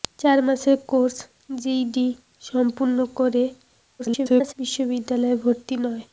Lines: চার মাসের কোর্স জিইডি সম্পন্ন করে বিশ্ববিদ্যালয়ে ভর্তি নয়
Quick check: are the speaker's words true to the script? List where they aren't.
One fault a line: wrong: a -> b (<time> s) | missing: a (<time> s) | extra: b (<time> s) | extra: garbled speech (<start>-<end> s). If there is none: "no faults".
extra: garbled speech (4.0-4.5 s)